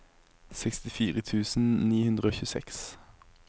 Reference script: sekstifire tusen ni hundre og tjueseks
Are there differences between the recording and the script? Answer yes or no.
no